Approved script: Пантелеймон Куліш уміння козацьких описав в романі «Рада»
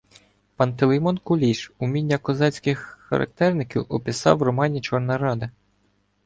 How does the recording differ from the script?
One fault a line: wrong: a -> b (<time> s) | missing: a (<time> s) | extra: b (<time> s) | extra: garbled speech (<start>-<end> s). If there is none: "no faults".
extra: характерників (3.0 s)
extra: Чорна (4.8 s)